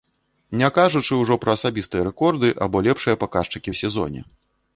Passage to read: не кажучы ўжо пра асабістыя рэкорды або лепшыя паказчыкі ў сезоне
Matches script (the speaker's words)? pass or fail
pass